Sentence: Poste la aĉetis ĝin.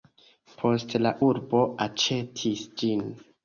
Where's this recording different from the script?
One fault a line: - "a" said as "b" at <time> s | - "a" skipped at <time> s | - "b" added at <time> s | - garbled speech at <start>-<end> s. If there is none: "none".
- "urbo" added at 1.3 s